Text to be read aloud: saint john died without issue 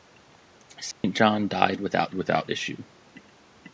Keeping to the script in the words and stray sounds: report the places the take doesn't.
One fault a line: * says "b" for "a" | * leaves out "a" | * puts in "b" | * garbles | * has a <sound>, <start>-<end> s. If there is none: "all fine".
* has a dropout, 0.9-1.0 s
* puts in "without"